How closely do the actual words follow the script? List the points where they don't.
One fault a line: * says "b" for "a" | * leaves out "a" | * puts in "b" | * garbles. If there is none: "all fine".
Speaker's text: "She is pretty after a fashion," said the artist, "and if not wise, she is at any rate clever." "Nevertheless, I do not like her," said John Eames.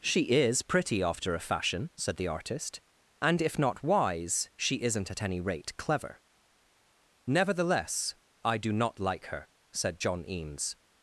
* says "isn't" for "is"